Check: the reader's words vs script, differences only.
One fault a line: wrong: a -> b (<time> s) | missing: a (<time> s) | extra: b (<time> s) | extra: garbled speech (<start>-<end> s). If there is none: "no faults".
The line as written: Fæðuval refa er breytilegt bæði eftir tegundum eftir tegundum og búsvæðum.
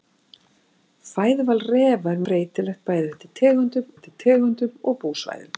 no faults